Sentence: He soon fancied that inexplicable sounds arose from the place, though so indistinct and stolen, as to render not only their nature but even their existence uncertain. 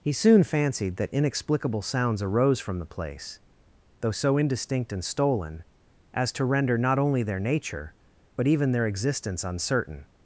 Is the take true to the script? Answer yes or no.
yes